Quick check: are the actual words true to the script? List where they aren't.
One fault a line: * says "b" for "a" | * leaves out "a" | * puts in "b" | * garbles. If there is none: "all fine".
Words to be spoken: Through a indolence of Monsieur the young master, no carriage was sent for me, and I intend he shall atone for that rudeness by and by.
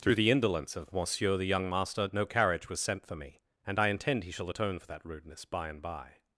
* says "the" for "a"